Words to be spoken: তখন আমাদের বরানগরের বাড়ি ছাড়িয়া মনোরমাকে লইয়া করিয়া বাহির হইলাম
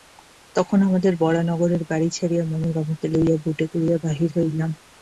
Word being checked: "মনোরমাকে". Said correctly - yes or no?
yes